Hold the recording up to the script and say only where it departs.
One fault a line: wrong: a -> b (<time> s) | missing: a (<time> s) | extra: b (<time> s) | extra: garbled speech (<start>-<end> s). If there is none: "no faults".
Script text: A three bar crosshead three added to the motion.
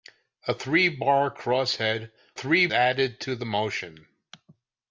no faults